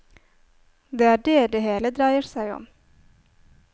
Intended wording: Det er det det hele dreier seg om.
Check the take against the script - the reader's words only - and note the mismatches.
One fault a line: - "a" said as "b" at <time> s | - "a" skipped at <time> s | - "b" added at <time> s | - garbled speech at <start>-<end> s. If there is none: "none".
none